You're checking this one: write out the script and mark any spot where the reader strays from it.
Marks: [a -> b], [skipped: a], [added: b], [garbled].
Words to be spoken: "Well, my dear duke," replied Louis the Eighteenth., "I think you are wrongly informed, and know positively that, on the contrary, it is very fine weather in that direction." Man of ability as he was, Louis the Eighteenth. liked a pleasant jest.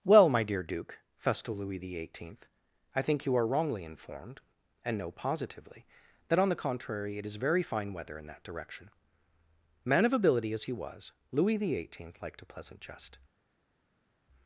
"Well, my dear duke," [replied -> festal] Louis the Eighteenth., "I think you are wrongly informed, and know positively that, on the contrary, it is very fine weather in that direction." Man of ability as he was, Louis the Eighteenth. liked a pleasant jest.